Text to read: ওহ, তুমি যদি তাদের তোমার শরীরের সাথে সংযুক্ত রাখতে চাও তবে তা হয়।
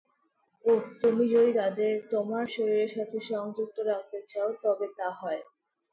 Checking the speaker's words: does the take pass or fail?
pass